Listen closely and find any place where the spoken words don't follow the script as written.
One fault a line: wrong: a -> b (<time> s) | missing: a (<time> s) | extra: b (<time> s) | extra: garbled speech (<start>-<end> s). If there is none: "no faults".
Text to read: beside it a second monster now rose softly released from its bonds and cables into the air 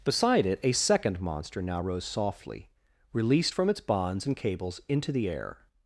no faults